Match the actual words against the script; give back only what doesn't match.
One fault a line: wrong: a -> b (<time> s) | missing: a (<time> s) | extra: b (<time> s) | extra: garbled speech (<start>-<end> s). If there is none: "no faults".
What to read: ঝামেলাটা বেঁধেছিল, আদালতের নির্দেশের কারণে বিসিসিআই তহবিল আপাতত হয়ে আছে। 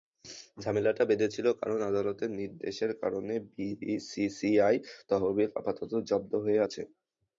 extra: কারণ (1.6 s)
extra: জব্দ (6.1 s)